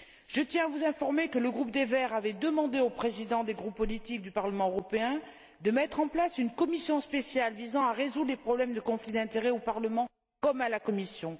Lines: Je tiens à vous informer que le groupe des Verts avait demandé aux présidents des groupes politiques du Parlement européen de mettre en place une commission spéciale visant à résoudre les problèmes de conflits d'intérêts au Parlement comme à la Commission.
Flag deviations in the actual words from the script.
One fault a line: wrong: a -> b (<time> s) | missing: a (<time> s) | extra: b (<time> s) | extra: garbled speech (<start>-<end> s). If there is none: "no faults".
no faults